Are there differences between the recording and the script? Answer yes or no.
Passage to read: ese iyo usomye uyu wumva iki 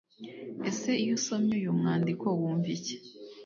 yes